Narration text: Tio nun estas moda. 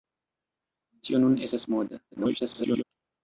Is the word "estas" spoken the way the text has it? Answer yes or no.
yes